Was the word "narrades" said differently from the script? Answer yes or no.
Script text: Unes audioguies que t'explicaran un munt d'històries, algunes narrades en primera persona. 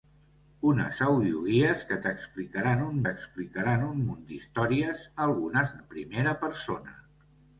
yes